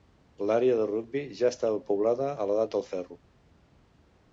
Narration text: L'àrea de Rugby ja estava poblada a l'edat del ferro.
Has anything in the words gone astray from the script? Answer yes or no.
no